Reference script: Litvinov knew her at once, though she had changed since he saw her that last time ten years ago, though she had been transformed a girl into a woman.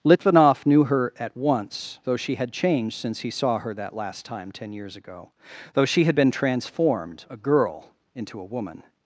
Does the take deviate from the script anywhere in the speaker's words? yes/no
no